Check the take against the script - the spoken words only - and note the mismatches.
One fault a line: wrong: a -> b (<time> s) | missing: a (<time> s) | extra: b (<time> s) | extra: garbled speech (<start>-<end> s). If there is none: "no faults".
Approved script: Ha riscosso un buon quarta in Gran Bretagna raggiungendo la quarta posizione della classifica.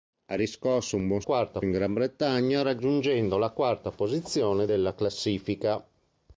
no faults